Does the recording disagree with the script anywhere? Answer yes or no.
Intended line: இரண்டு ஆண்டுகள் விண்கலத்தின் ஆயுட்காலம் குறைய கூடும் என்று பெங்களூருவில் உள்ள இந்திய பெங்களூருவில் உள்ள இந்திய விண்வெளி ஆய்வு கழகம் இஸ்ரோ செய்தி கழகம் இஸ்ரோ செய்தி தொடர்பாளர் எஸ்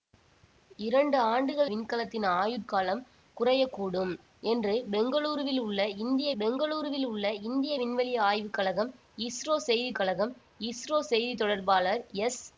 no